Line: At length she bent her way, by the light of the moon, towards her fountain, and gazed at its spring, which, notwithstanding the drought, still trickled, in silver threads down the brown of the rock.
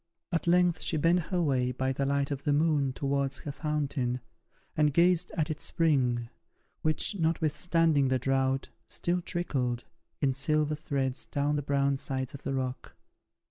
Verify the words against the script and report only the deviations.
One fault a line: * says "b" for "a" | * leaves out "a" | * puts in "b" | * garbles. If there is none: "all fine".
* puts in "sides"